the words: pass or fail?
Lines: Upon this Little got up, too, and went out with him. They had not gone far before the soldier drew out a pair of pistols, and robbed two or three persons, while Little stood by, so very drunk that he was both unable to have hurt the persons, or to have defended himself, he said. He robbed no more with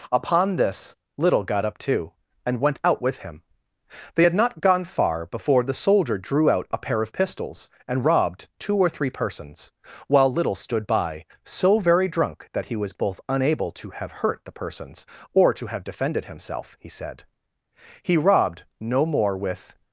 pass